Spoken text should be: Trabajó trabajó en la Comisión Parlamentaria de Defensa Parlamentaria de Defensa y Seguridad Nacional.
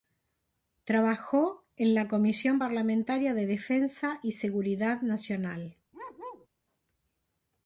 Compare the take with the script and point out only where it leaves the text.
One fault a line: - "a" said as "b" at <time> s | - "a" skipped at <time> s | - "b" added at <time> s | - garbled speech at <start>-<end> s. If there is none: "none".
- "trabajó" skipped at 1.7 s
- "Parlamentaria de Defensa" skipped at 4.2 s